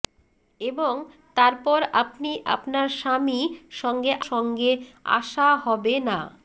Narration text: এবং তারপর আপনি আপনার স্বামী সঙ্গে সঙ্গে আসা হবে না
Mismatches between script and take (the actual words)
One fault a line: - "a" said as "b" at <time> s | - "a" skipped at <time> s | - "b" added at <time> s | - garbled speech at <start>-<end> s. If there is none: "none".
none